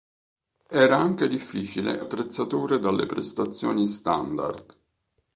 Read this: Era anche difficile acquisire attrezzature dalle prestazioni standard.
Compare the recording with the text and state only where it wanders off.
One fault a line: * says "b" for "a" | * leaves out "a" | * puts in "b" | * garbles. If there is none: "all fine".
* leaves out "acquisire"